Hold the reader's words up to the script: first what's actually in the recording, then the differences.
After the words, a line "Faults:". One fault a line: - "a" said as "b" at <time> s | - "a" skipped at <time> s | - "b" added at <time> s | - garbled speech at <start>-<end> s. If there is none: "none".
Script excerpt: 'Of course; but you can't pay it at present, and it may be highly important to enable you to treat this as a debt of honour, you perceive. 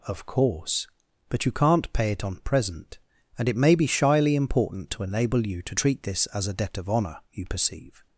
'Of course; but you can't pay it on present, and it may be shyly important to enable you to treat this as a debt of honour, you perceive.
Faults:
- "at" said as "on" at 2.2 s
- "highly" said as "shyly" at 3.9 s